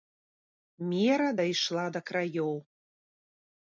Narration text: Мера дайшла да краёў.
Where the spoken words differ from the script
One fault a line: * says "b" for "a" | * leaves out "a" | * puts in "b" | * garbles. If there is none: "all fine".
all fine